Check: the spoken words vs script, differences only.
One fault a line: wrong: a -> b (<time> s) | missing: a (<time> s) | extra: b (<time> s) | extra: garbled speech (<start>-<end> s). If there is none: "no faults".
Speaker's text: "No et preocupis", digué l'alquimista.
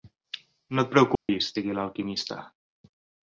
no faults